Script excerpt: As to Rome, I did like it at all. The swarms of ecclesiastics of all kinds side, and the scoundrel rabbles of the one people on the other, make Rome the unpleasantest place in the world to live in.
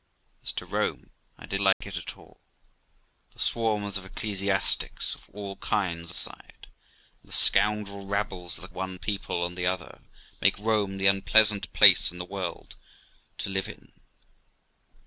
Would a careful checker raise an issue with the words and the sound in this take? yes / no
yes